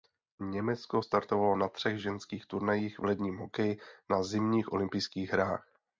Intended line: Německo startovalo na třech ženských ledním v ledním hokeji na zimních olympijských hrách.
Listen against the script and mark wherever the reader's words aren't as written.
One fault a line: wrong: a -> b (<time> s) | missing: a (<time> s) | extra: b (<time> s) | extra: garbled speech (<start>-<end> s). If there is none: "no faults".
wrong: ledním -> turnajích (2.5 s)